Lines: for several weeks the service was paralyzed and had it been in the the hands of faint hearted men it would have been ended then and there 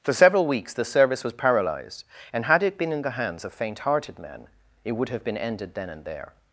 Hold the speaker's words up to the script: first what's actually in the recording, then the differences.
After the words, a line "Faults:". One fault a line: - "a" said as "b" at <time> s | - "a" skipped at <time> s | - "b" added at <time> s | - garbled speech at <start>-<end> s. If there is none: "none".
for several weeks the service was paralyzed and had it been in the hands of faint hearted men it would have been ended then and there
Faults:
- "the" skipped at 3.2 s